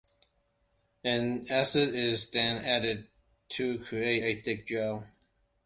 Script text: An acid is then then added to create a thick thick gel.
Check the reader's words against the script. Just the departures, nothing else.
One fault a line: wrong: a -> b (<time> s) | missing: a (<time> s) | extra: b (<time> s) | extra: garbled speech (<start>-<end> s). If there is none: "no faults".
missing: then (2.6 s)
missing: thick (4.7 s)